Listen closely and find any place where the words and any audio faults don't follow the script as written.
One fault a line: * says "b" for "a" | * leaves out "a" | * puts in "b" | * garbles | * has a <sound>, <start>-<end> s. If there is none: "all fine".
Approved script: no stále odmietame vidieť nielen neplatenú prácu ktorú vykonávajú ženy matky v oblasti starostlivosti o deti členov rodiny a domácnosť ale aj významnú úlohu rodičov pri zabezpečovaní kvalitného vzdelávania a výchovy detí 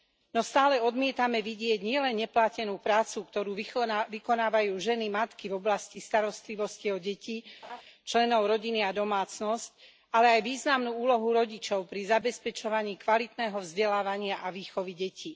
* has a laugh, 7.6-7.8 s